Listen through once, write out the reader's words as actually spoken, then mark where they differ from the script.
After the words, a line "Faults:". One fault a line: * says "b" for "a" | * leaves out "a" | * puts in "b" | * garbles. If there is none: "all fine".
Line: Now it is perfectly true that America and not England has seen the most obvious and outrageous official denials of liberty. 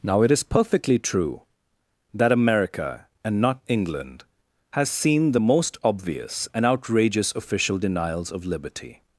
Now it is perfectly true that America and not England has seen the most obvious and outrageous official denials of liberty.
Faults:
all fine